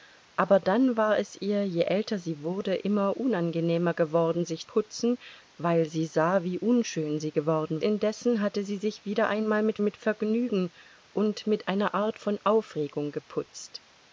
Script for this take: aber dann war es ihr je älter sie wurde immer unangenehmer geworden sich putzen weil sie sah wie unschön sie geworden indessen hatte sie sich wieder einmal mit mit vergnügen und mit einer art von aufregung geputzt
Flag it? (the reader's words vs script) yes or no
no